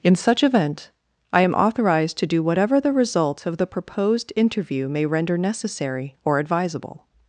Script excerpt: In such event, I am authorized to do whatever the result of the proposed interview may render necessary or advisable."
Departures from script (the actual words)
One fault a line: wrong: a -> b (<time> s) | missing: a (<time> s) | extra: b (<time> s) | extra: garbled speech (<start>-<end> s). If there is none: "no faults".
no faults